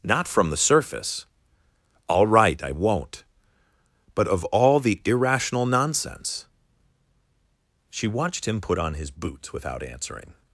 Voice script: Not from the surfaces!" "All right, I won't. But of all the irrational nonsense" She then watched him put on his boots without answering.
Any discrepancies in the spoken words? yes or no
yes